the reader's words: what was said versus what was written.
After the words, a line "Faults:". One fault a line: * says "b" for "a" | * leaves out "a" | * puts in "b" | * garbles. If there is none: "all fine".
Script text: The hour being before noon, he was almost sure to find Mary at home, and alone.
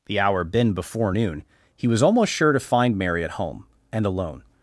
The hour been before noon, he was almost sure to find Mary at home, and alone.
Faults:
* says "been" for "being"